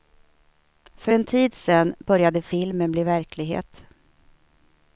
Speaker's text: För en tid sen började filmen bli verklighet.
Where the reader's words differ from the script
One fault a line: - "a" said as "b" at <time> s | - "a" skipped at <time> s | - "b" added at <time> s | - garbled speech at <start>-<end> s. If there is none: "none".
none